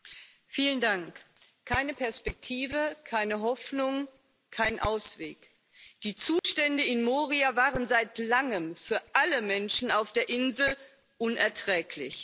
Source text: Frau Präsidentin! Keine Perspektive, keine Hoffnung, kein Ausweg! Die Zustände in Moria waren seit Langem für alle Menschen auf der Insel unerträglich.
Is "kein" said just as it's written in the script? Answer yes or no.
yes